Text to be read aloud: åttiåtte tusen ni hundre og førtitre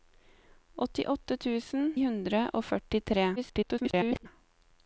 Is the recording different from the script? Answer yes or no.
yes